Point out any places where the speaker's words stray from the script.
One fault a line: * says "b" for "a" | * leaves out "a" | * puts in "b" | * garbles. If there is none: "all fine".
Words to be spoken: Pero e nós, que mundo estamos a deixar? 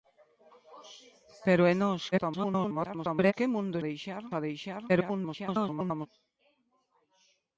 * garbles
* says "deixar" for "estamos"
* garbles